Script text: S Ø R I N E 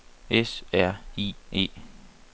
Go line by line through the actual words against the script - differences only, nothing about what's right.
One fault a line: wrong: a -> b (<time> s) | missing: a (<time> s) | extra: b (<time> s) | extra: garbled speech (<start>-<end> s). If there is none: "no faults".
missing: Ø (0.6 s)
missing: N (1.4 s)